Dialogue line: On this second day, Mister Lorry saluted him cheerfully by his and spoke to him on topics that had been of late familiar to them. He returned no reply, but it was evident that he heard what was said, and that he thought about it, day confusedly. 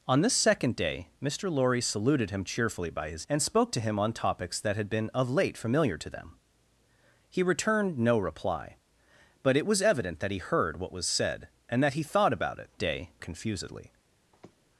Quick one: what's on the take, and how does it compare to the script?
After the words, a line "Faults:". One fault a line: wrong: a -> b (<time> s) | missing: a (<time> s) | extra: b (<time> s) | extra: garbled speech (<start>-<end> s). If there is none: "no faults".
On this second day, Mister Lorry saluted him cheerfully by his and spoke to him on topics that had been of late familiar to them. He returned no reply, but it was evident that he heard what was said, and that he thought about it, day confusedly.
Faults:
no faults